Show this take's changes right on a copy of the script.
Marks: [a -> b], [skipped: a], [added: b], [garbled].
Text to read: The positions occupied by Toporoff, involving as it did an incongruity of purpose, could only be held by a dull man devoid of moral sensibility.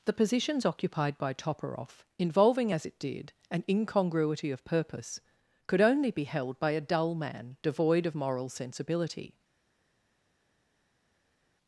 The positions occupied by Toporoff, involving as it did an incongruity of purpose, could only be held by a dull man devoid of moral sensibility.